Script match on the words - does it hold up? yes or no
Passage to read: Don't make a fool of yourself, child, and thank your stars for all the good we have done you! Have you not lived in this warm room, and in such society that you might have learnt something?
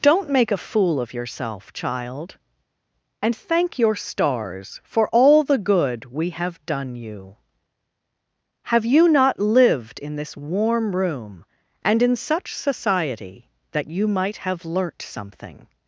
yes